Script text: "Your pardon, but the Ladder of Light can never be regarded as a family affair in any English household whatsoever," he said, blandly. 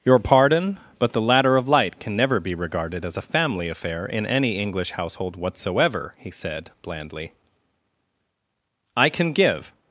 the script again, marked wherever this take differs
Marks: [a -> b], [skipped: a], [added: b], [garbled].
"Your pardon, but the Ladder of Light can never be regarded as a family affair in any English household whatsoever," he said, blandly. [added: I can give]